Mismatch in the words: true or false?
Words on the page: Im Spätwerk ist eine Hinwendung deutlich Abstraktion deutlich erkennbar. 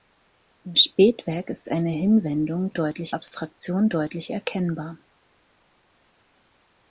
false